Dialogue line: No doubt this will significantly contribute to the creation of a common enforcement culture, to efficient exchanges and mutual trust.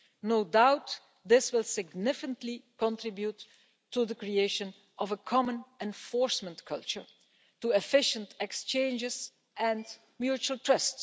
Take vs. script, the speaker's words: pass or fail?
pass